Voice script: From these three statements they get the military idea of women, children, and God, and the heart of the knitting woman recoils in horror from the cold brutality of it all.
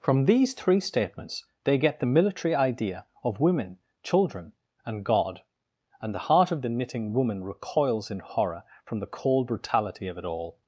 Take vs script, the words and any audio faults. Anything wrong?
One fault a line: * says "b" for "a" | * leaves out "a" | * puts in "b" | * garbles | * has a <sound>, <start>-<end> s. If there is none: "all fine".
all fine